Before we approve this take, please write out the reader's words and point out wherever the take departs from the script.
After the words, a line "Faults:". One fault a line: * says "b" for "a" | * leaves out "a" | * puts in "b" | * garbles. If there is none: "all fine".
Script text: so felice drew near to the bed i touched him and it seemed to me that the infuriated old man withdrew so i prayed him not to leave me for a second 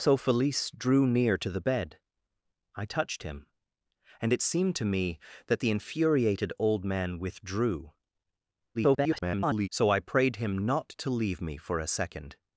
so felice drew near to the bed i touched him and it seemed to me that the infuriated old man withdrew [garbled] so i prayed him not to leave me for a second
Faults:
* garbles